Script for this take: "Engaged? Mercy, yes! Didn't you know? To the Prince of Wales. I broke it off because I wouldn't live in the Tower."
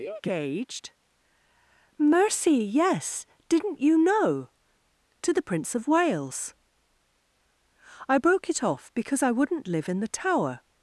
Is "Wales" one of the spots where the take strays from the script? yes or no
no